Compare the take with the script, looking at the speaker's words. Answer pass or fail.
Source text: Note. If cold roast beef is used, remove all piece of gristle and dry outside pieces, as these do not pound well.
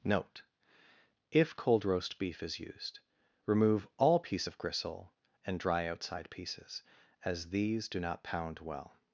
pass